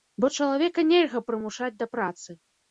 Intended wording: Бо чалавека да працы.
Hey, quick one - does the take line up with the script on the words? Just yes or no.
no